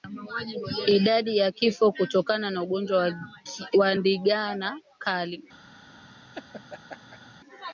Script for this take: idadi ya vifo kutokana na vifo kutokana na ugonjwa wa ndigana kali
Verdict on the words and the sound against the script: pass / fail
fail